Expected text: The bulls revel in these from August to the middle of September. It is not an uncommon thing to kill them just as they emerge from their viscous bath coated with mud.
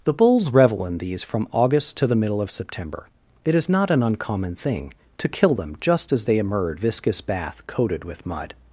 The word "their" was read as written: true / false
false